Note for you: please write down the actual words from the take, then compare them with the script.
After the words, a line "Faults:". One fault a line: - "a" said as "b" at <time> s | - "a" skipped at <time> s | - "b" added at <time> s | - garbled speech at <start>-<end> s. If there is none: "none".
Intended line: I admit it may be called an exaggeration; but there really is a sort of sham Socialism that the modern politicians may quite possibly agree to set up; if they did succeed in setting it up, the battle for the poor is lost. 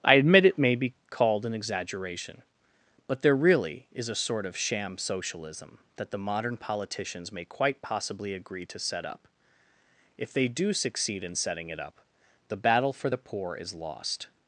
I admit it may be called an exaggeration; but there really is a sort of sham Socialism that the modern politicians may quite possibly agree to set up; if they do succeed in setting it up, the battle for the poor is lost.
Faults:
- "did" said as "do" at 10.5 s